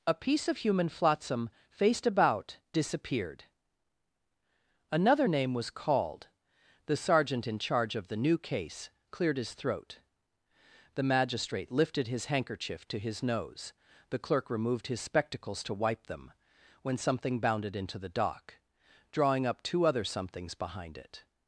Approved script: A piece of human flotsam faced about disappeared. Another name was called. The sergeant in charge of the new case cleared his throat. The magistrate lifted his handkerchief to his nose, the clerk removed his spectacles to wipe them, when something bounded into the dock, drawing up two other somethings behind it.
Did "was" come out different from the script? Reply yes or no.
no